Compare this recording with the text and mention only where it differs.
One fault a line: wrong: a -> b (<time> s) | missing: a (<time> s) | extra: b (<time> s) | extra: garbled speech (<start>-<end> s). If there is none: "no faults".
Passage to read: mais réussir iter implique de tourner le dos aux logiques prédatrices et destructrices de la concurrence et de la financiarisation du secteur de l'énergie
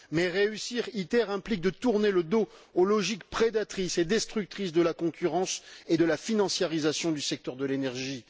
no faults